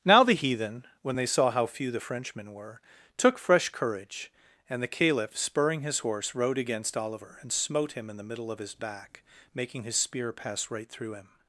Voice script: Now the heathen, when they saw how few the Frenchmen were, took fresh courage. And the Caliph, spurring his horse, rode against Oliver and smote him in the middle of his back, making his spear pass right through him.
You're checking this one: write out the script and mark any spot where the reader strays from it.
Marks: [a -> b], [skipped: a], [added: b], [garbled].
Now the heathen, when they saw how few the Frenchmen were, took fresh courage. And the Caliph, spurring his horse, rode against Oliver and smote him in the middle of his back, making his spear pass right through him.